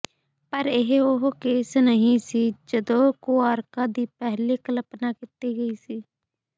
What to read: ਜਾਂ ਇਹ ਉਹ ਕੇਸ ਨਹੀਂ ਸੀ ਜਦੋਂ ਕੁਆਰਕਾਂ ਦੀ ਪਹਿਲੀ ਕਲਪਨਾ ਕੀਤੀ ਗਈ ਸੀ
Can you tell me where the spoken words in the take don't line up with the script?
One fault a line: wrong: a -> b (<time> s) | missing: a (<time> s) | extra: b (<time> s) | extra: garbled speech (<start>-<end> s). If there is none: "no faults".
wrong: ਜਾਂ -> ਪਰ (0.5 s)